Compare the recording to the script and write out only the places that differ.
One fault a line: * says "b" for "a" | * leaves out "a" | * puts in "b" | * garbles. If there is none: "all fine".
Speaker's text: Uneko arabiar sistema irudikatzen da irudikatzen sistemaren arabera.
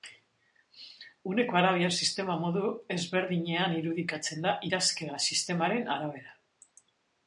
* puts in "modu ezberdinean"
* says "idazkera" for "irudikatzen"